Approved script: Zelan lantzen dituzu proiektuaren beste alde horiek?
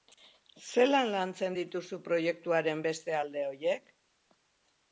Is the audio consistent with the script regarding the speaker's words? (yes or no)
yes